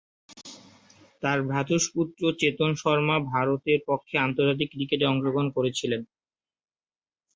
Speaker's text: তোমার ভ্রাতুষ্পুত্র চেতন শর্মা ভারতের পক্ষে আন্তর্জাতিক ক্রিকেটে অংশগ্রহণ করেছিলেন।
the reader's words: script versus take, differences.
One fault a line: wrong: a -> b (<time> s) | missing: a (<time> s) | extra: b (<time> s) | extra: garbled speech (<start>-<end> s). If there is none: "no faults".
wrong: তোমার -> তার (1.2 s)